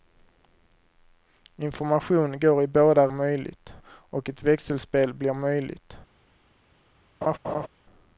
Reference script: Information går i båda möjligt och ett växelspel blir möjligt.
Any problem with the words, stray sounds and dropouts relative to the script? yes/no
yes